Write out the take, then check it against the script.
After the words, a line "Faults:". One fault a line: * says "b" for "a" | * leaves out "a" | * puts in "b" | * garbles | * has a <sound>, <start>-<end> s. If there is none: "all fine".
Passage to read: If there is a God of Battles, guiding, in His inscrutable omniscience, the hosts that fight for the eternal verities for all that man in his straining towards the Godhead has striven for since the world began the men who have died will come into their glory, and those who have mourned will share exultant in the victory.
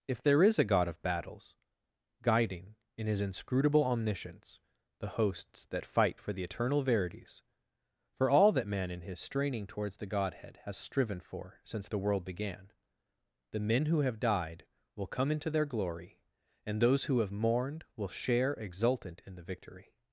If there is a God of Battles, guiding, in His inscrutable omniscience, the hosts that fight for the eternal verities for all that man in his straining towards the Godhead has striven for since the world began the men who have died will come into their glory, and those who have mourned will share exultant in the victory.
Faults:
all fine